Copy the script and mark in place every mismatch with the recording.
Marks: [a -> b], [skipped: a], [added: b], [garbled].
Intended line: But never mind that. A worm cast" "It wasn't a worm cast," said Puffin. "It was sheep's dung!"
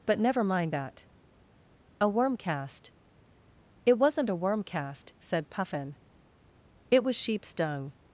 But never mind that. A worm cast" "It wasn't a worm cast," said Puffin. "It was sheep's dung!"